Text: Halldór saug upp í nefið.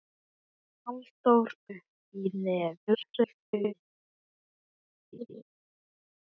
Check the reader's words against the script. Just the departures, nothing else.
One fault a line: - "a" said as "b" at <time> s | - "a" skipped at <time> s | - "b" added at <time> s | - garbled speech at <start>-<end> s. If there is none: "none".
- "saug" skipped at 1.5 s
- garbled speech at 2.9-3.7 s